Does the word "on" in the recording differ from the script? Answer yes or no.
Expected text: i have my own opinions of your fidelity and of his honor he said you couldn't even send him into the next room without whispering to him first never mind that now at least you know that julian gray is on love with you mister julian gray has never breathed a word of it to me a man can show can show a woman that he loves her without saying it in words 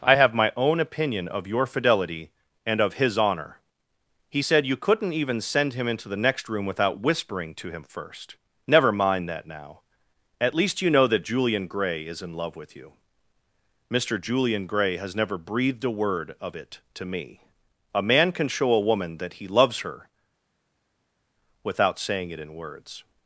yes